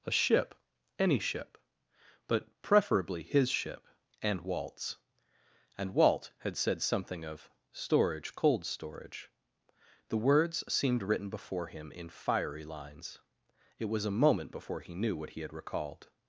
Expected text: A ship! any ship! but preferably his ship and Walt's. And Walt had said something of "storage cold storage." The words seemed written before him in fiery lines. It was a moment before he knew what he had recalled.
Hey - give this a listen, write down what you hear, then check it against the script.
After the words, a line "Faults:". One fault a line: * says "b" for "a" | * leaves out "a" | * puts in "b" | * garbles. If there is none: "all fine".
A ship! any ship! but preferably his ship and Walt's. And Walt had said something of "storage cold storage." The words seemed written before him in fiery lines. It was a moment before he knew what he had recalled.
Faults:
all fine